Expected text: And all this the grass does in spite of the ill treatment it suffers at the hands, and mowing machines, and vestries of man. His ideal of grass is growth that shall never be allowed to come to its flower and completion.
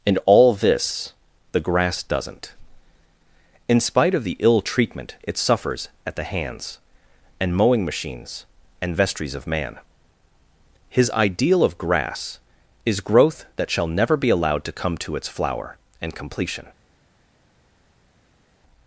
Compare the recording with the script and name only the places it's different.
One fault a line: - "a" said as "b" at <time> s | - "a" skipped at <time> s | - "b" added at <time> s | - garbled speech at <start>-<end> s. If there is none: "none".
- "does" said as "doesn't" at 2.0 s